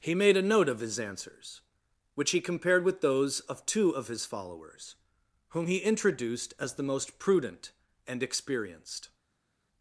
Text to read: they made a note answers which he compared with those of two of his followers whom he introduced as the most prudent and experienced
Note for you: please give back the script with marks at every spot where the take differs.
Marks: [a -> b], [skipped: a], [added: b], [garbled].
[they -> he] made a note [added: of his] answers which he compared with those of two of his followers whom he introduced as the most prudent and experienced